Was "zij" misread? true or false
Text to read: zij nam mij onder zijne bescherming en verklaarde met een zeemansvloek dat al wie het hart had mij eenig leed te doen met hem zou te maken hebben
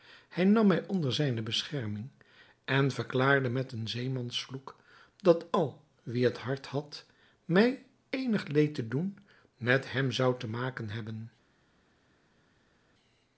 true